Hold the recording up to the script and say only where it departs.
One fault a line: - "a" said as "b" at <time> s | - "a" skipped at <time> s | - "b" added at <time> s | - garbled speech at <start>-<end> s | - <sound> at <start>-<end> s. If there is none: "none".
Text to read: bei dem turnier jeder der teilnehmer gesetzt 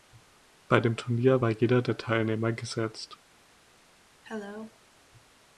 - "war" added at 1.4 s
- cough at 4.2-4.8 s